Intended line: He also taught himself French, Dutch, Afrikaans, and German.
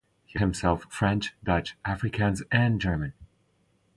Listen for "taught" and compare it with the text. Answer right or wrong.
wrong